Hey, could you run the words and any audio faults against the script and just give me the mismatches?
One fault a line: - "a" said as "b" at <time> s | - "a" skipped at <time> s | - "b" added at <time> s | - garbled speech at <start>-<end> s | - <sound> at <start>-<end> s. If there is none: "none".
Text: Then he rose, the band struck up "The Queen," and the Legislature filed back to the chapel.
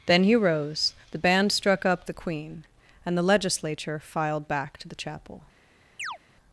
- chirp at 6.0-6.2 s